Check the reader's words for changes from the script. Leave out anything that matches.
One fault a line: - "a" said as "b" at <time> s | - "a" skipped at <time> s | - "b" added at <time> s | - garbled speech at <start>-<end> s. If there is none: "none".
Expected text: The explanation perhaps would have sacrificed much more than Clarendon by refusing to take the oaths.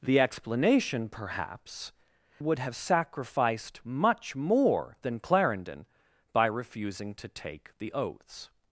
none